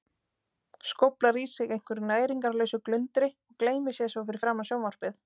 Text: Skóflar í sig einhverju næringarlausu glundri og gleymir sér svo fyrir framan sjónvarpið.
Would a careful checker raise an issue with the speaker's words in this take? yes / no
no